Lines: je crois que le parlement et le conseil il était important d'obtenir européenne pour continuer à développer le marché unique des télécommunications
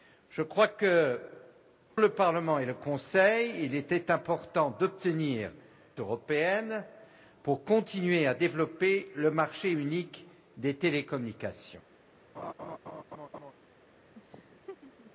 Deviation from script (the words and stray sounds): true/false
true